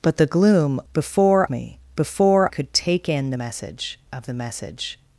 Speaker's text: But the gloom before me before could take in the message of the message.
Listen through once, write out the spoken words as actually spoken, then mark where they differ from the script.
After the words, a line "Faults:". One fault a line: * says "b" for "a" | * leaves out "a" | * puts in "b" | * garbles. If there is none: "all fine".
But the gloom before me before could take in the message of the message.
Faults:
all fine